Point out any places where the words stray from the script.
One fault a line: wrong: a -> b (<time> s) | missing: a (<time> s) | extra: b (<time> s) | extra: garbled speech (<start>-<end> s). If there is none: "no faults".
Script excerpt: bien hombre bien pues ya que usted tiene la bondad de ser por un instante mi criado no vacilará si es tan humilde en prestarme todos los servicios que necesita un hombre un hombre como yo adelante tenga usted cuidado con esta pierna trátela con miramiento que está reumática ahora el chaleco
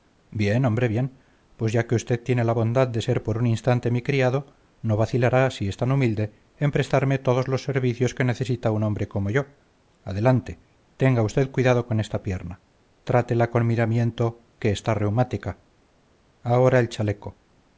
missing: un hombre (9.1 s)